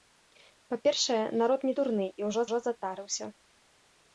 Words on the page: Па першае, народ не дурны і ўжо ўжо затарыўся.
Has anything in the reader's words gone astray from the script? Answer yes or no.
no